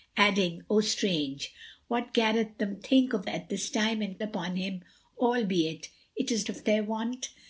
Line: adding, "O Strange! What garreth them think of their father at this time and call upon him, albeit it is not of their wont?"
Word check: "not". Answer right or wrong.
wrong